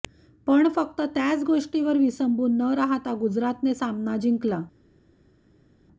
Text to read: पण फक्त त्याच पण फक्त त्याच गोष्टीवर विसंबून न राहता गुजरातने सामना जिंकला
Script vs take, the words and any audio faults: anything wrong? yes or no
yes